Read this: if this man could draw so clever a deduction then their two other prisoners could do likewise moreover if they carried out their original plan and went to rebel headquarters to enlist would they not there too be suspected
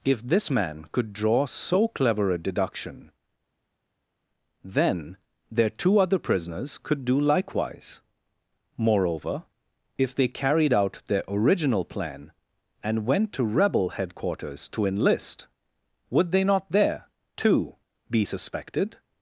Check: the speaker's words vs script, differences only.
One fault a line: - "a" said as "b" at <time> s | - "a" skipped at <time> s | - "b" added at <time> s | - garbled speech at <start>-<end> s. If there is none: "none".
none